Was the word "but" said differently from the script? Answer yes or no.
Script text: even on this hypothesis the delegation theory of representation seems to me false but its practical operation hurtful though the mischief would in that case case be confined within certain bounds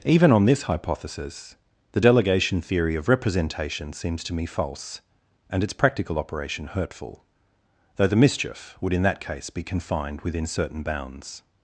yes